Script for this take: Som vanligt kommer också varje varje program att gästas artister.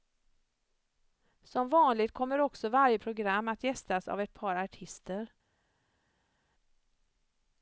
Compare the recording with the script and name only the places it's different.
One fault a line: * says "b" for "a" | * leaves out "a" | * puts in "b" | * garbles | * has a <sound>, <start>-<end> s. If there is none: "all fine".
* leaves out "varje"
* puts in "av ett par"